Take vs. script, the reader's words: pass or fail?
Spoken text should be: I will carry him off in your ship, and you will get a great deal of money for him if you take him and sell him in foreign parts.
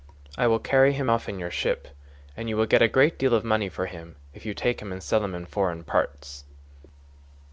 pass